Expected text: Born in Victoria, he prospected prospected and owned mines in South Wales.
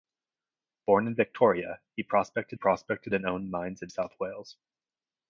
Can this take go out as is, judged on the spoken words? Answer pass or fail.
pass